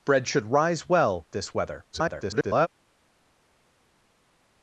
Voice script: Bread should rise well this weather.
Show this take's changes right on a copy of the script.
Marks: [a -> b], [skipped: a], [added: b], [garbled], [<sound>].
Bread should rise well this weather. [garbled]